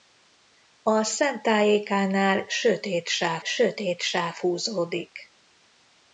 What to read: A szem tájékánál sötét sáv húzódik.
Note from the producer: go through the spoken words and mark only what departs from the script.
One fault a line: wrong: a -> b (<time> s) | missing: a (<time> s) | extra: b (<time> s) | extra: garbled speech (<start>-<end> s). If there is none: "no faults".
extra: sötét sáv (3.4 s)